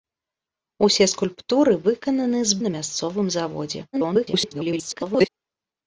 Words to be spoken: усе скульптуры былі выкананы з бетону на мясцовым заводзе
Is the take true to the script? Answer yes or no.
no